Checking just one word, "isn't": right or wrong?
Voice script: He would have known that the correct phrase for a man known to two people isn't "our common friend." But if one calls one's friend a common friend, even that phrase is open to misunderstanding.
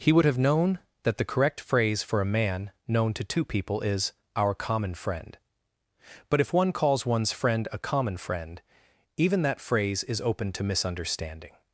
wrong